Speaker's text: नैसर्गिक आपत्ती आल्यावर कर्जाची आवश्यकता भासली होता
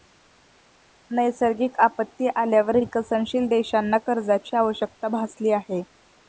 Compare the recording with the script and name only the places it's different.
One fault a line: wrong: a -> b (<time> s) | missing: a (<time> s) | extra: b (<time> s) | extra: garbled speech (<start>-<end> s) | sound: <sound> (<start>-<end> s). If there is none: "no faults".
extra: विकसनशील देशांना (2.8 s)
wrong: होता -> आहे (5.5 s)